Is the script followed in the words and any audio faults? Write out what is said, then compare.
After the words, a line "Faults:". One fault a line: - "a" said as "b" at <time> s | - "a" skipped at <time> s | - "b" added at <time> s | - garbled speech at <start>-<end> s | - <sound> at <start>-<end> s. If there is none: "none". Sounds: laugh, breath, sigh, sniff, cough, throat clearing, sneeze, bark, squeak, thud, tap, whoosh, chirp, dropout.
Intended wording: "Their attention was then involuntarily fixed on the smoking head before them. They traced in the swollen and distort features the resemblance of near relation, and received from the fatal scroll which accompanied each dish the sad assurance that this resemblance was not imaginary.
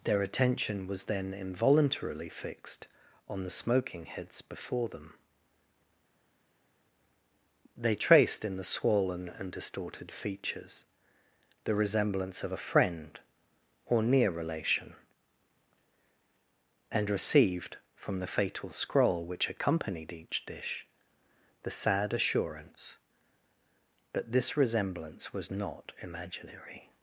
"Their attention was then involuntarily fixed on the smoking heads before them. They traced in the swollen and distorted features the resemblance of a friend or near relation, and received from the fatal scroll which accompanied each dish the sad assurance that this resemblance was not imaginary.
Faults:
- "head" said as "heads" at 4.0 s
- "distort" said as "distorted" at 9.5 s
- "a friend or" added at 12.5 s